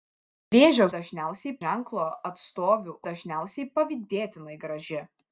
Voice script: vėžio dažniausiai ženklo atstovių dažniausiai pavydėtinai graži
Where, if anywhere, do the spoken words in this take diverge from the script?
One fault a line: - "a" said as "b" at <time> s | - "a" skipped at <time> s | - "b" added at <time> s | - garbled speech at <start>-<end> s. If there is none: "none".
none